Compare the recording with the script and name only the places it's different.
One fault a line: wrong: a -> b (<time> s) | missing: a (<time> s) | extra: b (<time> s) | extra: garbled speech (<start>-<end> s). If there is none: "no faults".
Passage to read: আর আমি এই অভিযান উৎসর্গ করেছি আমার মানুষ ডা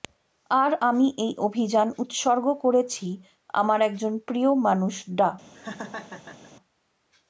extra: একজন প্রিয় (3.8 s)